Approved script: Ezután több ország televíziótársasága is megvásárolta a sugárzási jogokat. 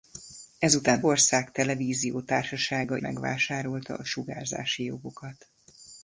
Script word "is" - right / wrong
wrong